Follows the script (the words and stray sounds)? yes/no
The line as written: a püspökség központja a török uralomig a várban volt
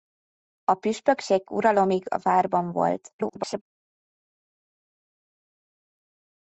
no